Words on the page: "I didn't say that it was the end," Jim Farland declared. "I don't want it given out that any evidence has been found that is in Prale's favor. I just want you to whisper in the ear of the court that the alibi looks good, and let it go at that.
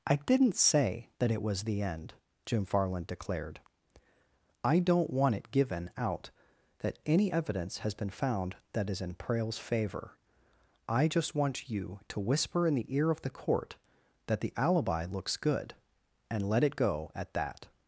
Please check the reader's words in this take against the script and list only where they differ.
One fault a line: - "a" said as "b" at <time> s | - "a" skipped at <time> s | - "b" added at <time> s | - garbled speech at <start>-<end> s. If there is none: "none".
none